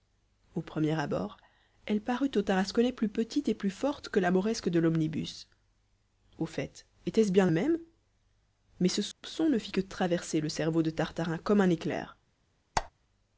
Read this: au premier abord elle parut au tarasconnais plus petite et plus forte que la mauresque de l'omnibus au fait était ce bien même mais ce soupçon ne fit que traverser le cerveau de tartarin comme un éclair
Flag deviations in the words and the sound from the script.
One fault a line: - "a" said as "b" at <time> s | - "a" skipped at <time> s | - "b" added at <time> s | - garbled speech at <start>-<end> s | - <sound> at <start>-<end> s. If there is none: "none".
- dropout at 9.1-9.2 s
- squeak at 12.8-12.9 s